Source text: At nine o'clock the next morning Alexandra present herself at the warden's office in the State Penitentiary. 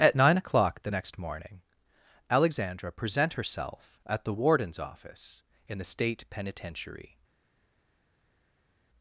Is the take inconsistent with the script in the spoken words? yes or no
no